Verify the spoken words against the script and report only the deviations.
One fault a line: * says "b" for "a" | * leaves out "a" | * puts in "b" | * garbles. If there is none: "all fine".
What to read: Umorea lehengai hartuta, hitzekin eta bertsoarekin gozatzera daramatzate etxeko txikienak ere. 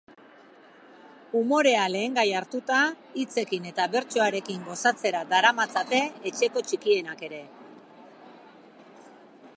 all fine